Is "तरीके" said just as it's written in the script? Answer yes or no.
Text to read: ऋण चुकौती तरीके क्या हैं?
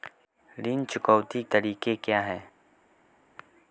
yes